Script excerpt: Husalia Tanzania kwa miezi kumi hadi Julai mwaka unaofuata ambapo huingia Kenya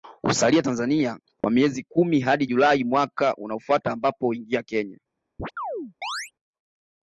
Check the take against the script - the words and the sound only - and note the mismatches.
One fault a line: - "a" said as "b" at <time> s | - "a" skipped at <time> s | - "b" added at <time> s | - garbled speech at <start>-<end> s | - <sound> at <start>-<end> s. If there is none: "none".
- dropout at 1.4-1.4 s
- chirp at 5.4-6.3 s